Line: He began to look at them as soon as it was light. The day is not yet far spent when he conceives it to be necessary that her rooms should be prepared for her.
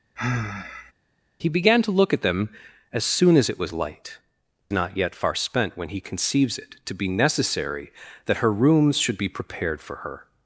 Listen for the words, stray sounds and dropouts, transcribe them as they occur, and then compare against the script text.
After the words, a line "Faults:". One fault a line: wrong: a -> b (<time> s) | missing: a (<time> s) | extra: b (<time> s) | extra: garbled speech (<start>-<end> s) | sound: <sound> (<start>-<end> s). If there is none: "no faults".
He began to look at them as soon as it was light. Not yet far spent when he conceives it to be necessary that her rooms should be prepared for her.
Faults:
sound: sigh (0.2-0.9 s)
missing: The day is (4.2 s)